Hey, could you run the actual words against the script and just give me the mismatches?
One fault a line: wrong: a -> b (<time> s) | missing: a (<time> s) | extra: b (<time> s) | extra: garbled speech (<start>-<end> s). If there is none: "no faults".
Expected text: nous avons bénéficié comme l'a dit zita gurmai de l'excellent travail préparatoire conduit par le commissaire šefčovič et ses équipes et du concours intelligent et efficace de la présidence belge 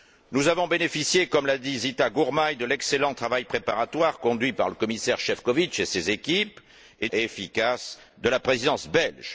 missing: du concours intelligent (7.1 s)